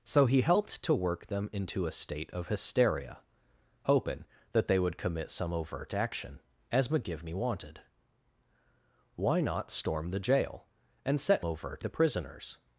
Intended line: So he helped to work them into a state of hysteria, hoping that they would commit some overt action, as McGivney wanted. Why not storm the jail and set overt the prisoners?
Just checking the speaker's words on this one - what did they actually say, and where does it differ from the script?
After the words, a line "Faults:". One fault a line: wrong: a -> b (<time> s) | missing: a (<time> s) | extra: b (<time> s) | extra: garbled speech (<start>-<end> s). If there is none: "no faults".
So he helped to work them into a state of hysteria, hoping that they would commit some overt action, as McGivney wanted. Why not storm the jail and set overt the prisoners?
Faults:
no faults